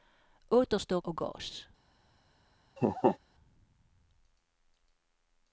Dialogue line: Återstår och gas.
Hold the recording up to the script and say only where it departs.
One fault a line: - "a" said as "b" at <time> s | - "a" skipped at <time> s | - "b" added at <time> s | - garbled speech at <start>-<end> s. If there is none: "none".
none